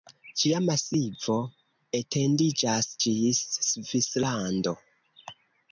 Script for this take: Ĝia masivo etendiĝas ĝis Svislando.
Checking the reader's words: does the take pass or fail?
pass